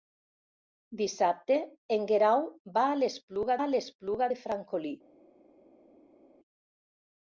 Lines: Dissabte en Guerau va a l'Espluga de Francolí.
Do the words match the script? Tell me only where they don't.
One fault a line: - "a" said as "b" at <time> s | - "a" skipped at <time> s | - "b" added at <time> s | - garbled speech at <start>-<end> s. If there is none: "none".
- "a l'Espluga" added at 3.6 s